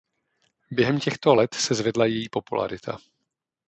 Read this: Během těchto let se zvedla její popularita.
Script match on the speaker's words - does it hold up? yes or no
yes